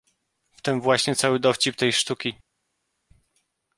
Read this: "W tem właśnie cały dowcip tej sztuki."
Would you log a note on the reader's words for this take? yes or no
no